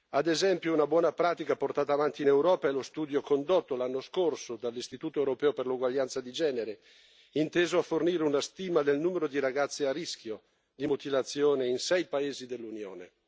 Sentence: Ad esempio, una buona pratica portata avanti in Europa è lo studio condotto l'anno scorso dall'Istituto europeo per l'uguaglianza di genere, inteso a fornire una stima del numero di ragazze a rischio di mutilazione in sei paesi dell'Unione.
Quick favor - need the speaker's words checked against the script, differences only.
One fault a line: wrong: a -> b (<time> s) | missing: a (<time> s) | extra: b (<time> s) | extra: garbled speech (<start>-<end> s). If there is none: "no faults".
no faults